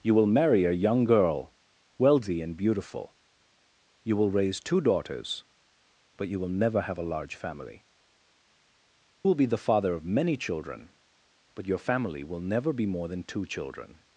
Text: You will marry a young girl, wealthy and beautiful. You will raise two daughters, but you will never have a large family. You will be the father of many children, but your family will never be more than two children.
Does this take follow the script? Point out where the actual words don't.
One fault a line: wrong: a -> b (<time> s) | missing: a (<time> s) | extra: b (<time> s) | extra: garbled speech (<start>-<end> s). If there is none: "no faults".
missing: You (7.8 s)